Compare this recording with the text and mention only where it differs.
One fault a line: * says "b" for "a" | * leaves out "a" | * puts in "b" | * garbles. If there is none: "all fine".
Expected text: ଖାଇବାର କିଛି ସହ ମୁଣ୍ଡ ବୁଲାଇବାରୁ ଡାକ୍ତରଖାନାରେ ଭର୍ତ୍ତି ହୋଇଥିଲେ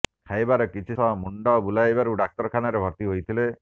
all fine